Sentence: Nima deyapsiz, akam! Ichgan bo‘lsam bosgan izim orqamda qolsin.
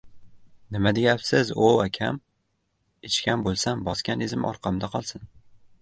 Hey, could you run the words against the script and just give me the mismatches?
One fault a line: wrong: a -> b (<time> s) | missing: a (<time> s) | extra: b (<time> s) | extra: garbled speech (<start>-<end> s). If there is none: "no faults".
extra: o‘v (1.7 s)